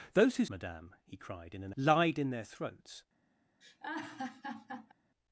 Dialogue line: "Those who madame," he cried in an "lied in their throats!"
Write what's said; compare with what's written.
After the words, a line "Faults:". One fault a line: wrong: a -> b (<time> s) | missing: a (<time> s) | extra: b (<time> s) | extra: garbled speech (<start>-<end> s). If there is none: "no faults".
"Those who madame," he cried in an "lied in their throats!"
Faults:
no faults